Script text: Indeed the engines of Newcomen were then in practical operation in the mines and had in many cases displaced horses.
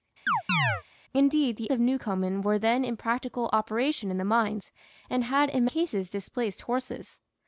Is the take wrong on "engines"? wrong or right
wrong